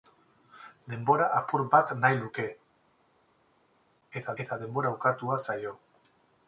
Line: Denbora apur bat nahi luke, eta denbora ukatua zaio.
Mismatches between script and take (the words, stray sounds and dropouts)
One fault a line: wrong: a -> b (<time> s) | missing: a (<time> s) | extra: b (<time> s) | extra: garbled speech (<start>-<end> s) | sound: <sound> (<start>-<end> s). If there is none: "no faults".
extra: eta (4.4 s)